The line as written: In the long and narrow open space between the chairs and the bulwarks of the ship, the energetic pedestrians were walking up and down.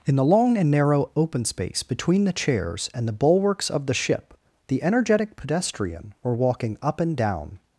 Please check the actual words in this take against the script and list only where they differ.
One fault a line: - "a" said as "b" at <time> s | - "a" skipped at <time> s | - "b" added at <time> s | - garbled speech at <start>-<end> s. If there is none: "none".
- "pedestrians" said as "pedestrian" at 5.3 s